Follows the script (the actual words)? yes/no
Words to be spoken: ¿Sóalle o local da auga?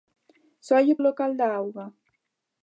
yes